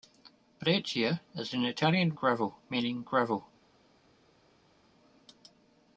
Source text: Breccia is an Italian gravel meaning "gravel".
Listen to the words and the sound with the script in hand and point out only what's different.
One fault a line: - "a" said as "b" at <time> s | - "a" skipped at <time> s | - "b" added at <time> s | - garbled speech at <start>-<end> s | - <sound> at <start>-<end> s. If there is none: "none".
none